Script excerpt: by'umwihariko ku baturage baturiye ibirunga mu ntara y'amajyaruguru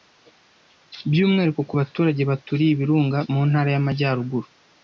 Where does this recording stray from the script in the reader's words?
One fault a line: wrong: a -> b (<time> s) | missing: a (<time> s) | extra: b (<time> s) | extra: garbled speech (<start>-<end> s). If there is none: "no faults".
no faults